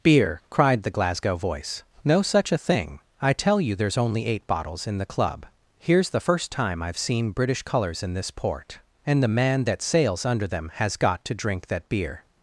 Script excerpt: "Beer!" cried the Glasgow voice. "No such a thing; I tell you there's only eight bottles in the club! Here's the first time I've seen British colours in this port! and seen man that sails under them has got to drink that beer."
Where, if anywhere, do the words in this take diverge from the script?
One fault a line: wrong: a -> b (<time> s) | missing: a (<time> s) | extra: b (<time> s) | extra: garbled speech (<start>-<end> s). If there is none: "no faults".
wrong: seen -> the (9.2 s)